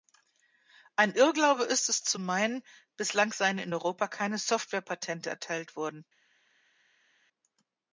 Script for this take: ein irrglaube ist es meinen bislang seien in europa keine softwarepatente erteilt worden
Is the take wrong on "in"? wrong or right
right